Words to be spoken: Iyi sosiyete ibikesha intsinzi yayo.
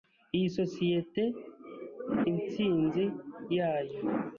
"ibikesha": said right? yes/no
no